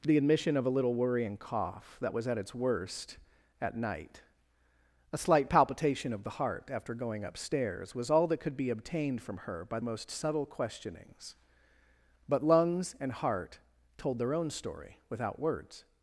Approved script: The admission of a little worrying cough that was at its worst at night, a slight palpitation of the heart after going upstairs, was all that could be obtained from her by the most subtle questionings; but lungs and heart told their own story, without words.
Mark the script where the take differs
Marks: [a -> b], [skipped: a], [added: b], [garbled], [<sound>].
The admission of a little worrying cough that was at its worst at night, a slight palpitation of the heart after going upstairs, was all that could be obtained from her by [skipped: the] most subtle questionings; but lungs and heart told their own story, without words.